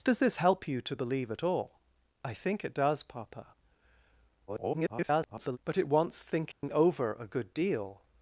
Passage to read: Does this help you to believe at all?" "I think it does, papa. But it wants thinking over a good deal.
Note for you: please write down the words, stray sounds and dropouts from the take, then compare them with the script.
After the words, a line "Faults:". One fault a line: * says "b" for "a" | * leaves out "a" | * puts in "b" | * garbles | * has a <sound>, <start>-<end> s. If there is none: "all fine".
Does this help you to believe at all?" "I think it does, papa. [garbled] But it wants thinking over a good deal.
Faults:
* garbles
* has a dropout, 6.5-6.6 s